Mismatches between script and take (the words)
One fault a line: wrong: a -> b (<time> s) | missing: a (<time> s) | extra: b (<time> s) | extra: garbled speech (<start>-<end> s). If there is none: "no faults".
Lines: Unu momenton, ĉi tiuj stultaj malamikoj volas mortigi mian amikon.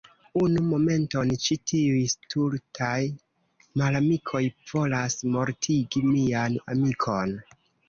no faults